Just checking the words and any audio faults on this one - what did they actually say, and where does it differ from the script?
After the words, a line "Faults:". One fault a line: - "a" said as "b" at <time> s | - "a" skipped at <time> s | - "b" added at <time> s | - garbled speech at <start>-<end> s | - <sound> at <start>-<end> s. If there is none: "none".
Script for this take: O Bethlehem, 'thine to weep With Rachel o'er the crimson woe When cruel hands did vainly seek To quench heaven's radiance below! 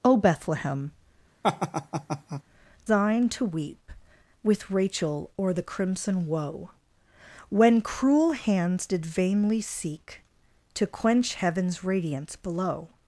O Bethlehem, 'thine to weep With Rachel o'er the crimson woe When cruel hands did vainly seek To quench heaven's radiance below!
Faults:
- laugh at 1.4-2.4 s